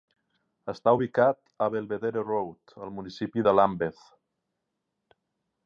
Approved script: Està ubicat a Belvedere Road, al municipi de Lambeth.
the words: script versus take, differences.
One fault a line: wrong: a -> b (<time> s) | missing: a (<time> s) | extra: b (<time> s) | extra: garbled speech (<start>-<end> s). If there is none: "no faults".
no faults